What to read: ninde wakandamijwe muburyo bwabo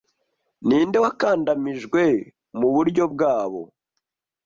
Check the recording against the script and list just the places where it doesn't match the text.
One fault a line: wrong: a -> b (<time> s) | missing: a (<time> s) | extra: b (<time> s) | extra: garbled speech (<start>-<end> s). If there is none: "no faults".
no faults